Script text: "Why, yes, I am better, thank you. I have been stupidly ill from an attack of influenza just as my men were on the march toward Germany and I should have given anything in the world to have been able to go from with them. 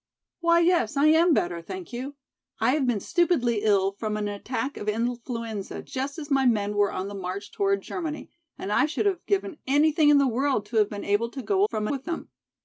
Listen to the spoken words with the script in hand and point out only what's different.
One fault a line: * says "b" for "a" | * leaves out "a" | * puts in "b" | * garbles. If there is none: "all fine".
all fine